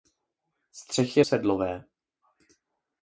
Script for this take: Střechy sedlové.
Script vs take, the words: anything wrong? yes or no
no